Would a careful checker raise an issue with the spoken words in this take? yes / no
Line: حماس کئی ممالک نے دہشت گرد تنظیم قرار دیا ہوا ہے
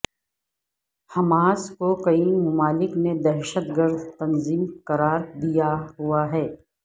yes